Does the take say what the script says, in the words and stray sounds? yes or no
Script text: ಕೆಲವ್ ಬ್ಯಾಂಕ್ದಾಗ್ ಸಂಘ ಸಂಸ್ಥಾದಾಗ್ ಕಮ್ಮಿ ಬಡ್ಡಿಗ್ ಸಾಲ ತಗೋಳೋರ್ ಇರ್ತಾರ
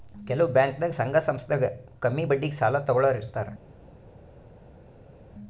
yes